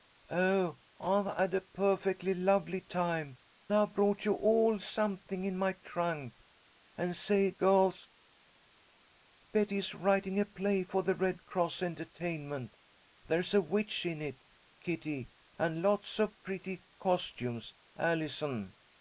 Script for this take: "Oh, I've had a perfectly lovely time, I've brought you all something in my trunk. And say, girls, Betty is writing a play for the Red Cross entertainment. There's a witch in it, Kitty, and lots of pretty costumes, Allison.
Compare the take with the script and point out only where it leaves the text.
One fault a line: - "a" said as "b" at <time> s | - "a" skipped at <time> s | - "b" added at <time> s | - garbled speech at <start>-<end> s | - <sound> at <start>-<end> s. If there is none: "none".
none